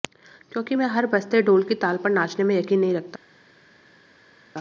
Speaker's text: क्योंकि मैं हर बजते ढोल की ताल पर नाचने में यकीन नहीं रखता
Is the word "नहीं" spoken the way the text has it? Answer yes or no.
yes